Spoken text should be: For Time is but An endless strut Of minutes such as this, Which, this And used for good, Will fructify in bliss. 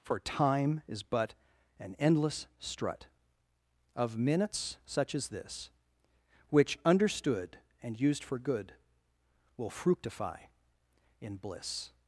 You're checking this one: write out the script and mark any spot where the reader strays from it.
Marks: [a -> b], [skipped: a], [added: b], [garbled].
For Time is but An endless strut Of minutes such as this, Which, [this -> understood] And used for good, Will fructify in bliss.